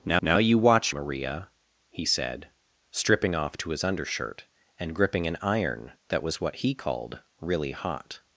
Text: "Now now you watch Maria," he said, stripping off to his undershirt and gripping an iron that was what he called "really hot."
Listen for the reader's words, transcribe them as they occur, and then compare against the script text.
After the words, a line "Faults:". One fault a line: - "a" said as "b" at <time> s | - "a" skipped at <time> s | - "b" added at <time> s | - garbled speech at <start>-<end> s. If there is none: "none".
"Now now you watch Maria," he said, stripping off to his undershirt and gripping an iron that was what he called "really hot."
Faults:
none